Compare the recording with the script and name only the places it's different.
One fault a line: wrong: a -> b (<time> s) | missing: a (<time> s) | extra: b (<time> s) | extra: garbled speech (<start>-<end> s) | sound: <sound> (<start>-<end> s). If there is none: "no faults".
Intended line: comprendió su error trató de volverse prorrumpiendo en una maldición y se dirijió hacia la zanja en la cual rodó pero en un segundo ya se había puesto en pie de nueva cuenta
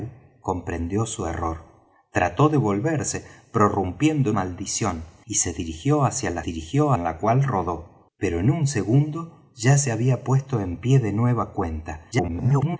missing: una (4.4 s)
wrong: zanja -> dirijió (6.4 s)
extra: garbled speech (12.1-12.8 s)